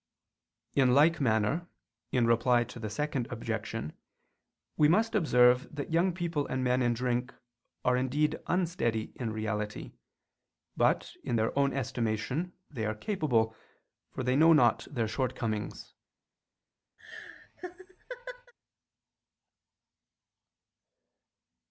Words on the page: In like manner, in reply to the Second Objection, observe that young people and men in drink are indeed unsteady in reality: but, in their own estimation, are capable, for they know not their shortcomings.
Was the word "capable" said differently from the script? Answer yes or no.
no